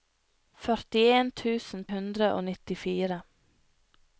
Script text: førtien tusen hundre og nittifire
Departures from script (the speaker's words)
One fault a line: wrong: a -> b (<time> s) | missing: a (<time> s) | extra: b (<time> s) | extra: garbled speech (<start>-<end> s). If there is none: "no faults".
no faults